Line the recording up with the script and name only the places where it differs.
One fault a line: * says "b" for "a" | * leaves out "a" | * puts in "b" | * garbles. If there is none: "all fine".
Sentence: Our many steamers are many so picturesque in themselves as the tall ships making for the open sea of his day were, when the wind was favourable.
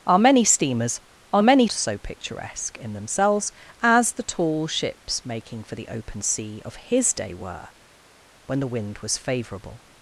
all fine